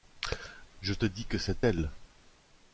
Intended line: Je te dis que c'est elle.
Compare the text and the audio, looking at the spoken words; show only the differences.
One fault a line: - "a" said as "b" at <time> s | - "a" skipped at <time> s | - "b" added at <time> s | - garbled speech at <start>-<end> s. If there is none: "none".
none